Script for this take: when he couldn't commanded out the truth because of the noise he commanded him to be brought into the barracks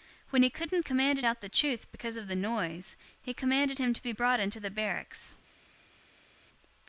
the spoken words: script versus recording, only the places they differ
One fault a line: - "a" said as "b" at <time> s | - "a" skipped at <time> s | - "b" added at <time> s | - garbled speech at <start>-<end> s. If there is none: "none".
none